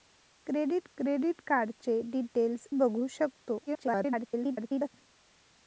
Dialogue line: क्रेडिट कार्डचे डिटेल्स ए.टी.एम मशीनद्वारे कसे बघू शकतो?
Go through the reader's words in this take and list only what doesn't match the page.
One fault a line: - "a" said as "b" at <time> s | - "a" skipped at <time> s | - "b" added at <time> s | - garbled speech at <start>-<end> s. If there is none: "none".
- "क्रेडिट" added at 1.0 s
- "ए.टी.एम मशीनद्वारे कसे" skipped at 2.7 s
- garbled speech at 3.7-4.9 s